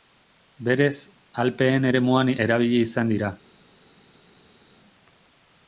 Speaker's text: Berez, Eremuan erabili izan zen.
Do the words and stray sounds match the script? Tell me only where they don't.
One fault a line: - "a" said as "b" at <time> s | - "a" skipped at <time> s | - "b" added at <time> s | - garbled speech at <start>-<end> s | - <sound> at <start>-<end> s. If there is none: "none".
- "Alpeen" added at 1.4 s
- "zen" said as "dira" at 3.1 s